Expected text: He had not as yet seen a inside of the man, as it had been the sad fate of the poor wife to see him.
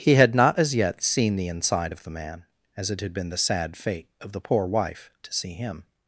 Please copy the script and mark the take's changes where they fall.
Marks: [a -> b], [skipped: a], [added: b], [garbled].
He had not as yet seen [a -> the] inside of the man, as it had been the sad fate of the poor wife to see him.